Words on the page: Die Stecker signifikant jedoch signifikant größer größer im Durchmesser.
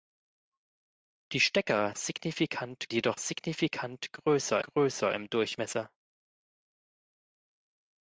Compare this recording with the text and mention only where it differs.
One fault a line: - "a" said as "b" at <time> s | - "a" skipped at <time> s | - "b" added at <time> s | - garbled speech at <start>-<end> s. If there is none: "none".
none